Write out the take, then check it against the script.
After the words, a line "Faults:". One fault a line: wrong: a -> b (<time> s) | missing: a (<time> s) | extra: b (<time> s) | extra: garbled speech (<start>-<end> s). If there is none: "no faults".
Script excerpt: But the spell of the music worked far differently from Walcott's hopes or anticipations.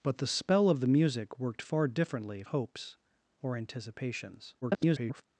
But the spell of the music worked far differently hopes or anticipations. [garbled]
Faults:
missing: from Walcott's (2.4 s)
extra: garbled speech (4.6-5.2 s)